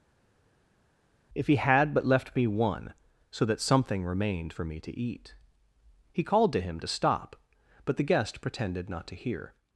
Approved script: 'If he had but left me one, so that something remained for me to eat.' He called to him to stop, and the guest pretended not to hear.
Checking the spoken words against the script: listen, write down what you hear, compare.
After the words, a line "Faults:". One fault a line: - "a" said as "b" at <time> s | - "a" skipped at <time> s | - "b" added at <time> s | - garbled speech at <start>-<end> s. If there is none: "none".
'If he had but left me one, so that something remained for me to eat.' He called to him to stop, but the guest pretended not to hear.
Faults:
- "and" said as "but" at 7.9 s